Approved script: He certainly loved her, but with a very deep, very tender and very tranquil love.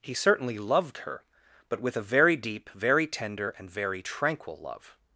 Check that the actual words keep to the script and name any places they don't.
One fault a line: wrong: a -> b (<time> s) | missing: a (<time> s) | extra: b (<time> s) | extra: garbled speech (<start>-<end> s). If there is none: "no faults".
no faults